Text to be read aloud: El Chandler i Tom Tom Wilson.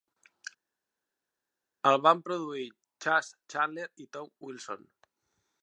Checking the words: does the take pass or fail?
fail